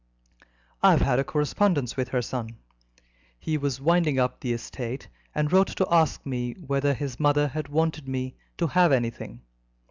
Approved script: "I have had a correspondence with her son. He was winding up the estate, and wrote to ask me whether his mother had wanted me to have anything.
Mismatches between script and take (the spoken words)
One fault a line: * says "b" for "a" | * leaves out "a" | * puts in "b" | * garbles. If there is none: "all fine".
all fine